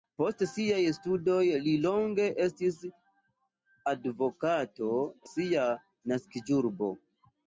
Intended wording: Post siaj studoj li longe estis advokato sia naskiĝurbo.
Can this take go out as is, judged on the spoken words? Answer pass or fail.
pass